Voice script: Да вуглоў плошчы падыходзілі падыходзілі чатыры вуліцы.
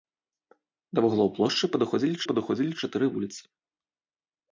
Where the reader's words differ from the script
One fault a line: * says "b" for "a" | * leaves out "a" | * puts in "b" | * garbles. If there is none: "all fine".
all fine